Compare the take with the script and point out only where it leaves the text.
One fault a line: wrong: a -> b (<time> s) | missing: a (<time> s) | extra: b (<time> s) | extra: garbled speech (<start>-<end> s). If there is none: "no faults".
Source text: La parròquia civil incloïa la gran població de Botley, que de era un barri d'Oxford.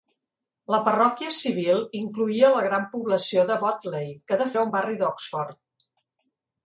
no faults